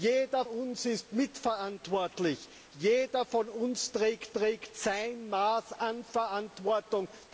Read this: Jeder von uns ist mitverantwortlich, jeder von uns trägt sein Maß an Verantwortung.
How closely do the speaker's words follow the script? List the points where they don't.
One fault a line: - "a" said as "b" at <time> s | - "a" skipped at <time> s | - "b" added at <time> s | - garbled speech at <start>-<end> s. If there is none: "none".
- "von" skipped at 0.5 s
- "trägt" added at 4.3 s